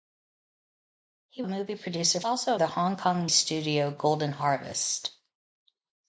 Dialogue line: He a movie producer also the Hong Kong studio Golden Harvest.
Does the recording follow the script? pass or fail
pass